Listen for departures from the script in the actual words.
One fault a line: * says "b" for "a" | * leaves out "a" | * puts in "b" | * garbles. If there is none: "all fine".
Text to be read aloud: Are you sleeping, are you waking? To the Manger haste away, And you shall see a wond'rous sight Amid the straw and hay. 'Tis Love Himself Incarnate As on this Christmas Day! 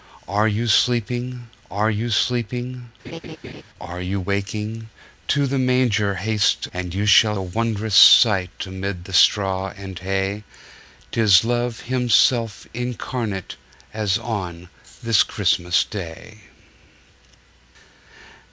* puts in "sleeping are you"
* leaves out "away"
* leaves out "see"